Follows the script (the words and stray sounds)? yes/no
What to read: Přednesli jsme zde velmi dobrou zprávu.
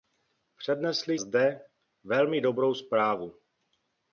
no